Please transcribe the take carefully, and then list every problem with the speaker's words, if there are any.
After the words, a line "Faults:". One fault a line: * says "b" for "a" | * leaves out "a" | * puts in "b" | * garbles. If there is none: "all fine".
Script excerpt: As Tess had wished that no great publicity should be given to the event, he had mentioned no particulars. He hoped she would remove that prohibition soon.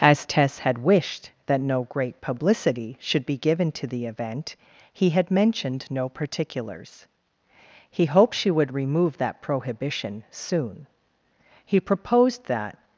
As Tess had wished that no great publicity should be given to the event, he had mentioned no particulars. He hoped she would remove that prohibition soon. He proposed that
Faults:
* puts in "He proposed that"